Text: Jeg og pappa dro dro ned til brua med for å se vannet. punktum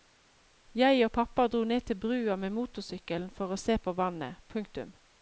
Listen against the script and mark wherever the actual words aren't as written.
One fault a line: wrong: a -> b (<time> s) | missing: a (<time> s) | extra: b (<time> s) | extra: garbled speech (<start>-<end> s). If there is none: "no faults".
missing: dro (1.6 s)
extra: motorsykkelen (2.6 s)
extra: på (3.8 s)